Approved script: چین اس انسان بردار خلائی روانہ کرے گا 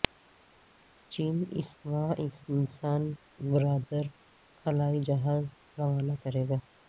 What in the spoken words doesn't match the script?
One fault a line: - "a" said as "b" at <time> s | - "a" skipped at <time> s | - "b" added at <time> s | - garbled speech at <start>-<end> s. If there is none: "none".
- "ماہ" added at 1.9 s
- "جہاز" added at 5.1 s